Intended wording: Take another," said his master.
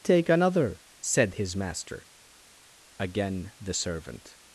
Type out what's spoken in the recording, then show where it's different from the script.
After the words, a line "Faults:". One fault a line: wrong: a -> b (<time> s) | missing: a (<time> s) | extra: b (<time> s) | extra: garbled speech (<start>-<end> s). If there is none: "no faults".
Take another," said his master. Again the servant
Faults:
extra: Again the servant (3.0 s)